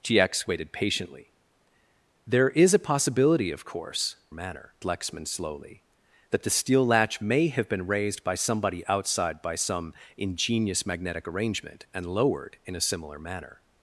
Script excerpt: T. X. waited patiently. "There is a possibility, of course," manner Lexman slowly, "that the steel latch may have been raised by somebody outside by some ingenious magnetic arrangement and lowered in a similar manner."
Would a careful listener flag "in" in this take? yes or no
no